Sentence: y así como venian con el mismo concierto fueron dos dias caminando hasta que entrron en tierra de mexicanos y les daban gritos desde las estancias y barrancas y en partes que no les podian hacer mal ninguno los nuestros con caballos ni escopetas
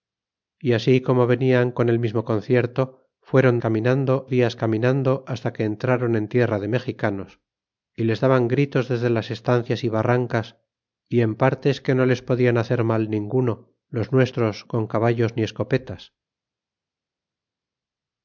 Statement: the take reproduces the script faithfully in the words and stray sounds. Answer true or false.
false